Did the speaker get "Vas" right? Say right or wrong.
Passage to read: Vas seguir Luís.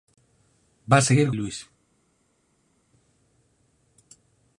right